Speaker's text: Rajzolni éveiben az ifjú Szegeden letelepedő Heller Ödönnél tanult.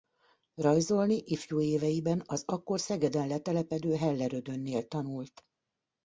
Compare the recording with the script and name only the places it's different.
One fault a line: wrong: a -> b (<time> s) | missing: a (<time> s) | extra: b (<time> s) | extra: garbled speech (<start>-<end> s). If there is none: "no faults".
extra: ifjú (1.2 s)
wrong: ifjú -> akkor (2.5 s)